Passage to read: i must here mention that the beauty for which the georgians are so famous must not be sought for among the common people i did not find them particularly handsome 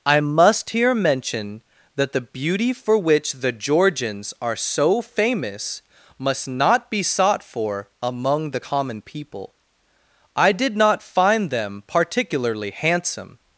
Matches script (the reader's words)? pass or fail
pass